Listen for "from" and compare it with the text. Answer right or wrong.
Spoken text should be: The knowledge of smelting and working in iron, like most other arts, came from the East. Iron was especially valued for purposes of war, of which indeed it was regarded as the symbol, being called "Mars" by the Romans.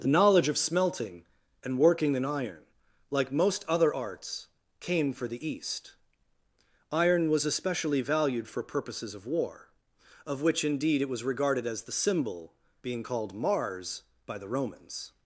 wrong